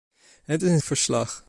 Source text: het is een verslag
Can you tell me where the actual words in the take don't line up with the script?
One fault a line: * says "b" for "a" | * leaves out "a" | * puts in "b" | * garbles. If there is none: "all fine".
all fine